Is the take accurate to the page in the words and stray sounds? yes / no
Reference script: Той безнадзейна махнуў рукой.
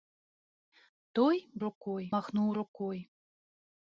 no